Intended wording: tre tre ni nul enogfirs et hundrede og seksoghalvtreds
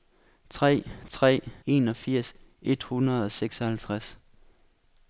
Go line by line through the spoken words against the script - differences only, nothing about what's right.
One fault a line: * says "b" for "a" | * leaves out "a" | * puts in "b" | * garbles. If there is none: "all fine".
* leaves out "ni nul"